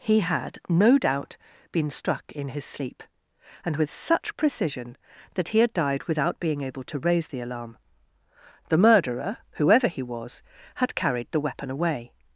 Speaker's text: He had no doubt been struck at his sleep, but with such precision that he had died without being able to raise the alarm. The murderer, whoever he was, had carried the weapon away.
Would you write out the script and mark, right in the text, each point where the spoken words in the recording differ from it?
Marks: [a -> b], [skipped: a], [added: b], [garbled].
He had no doubt been struck [at -> in] his sleep, [but -> and] with such precision that he had died without being able to raise the alarm. The murderer, whoever he was, had carried the weapon away.